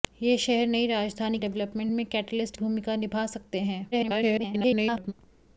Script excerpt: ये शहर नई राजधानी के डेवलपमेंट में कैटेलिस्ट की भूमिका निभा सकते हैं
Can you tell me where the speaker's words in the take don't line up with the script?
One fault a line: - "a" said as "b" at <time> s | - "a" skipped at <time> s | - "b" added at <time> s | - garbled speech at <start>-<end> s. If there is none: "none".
- "के" skipped at 1.4 s
- "की" skipped at 2.6 s
- garbled speech at 3.9-5.1 s